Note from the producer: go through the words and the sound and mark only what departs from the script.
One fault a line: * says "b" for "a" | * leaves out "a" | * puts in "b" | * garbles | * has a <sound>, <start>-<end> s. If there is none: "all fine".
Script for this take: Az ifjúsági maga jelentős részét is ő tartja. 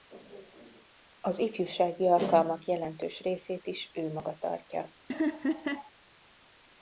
* says "alkalmak" for "maga"
* puts in "maga"
* has a laugh, 5.1-5.9 s